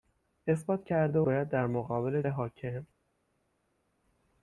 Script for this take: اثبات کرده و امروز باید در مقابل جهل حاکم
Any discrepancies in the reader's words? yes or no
yes